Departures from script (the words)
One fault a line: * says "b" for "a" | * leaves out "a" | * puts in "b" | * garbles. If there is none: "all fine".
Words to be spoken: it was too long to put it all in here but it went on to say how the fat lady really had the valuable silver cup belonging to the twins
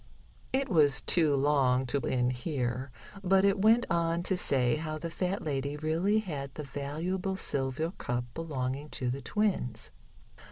* leaves out "put it all"